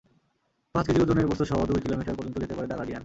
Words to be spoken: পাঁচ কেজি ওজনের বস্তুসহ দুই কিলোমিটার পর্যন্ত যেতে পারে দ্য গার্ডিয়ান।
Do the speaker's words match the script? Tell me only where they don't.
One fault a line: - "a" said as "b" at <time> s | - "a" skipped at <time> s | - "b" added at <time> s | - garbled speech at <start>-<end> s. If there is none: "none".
none